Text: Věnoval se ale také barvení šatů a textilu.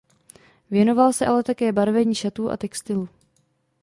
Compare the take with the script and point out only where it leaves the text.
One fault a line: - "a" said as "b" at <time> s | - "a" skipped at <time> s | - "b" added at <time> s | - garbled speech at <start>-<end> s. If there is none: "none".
none